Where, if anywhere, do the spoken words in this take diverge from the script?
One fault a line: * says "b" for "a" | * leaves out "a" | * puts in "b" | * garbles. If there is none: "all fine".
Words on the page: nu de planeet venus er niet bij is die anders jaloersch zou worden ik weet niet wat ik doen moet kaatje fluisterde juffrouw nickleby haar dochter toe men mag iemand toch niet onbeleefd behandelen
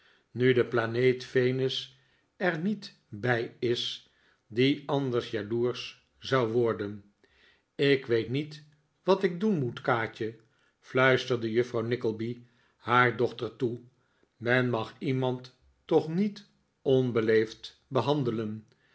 all fine